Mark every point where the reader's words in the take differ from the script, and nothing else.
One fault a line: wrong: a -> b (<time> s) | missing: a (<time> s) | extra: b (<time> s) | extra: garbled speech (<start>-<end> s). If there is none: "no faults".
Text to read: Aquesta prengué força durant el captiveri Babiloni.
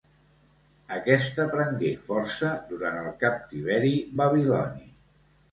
no faults